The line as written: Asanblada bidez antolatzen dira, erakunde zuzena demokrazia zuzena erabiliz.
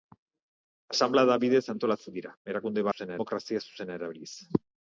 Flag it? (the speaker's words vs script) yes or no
no